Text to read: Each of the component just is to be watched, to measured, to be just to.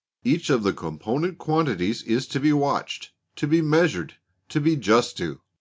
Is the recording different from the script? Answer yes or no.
yes